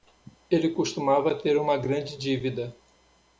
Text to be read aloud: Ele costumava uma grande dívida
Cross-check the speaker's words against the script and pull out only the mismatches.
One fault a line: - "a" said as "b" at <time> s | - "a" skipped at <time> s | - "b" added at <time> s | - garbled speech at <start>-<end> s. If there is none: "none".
- "ter" added at 1.4 s